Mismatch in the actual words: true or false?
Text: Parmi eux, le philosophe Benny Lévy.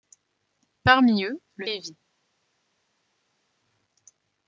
true